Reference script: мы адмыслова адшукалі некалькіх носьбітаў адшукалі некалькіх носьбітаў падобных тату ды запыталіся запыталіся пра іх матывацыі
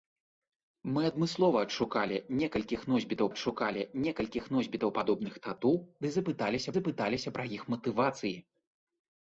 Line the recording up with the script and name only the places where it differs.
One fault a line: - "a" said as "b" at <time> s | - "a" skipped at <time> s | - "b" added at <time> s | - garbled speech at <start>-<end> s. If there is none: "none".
none